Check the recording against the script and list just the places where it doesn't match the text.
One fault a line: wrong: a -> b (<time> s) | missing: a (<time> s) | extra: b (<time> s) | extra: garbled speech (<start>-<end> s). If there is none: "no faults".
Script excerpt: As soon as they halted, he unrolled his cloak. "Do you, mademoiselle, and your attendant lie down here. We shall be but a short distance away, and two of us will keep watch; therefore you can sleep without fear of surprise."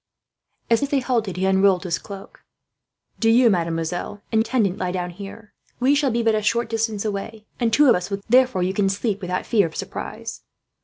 missing: soon (0.8 s)
missing: your (4.4 s)
missing: keep watch (8.2 s)